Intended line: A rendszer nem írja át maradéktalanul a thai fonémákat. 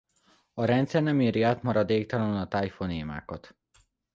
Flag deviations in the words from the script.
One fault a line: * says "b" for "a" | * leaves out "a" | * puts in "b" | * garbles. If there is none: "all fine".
all fine